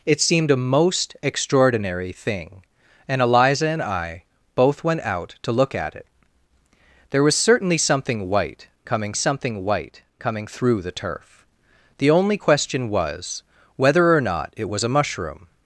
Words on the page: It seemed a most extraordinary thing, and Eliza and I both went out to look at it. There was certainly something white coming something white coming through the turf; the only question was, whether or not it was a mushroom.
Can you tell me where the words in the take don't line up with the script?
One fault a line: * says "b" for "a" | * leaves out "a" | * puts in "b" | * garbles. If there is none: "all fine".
all fine